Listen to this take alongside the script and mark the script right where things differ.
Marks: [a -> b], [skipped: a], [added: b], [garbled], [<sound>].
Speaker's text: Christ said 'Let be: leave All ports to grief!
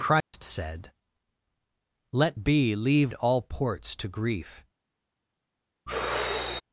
Christ [dropout] said 'Let be: leave All ports to grief! [sigh]